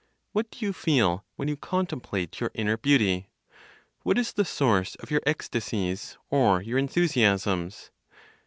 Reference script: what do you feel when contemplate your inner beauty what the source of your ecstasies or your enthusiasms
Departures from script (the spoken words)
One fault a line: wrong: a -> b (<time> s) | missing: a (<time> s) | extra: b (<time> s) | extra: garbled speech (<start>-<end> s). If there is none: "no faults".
extra: you (1.5 s)
extra: is (4.2 s)